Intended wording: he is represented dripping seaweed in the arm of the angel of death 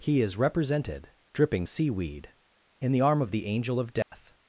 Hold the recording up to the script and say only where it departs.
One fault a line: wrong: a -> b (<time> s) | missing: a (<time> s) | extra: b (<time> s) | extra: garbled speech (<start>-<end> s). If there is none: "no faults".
no faults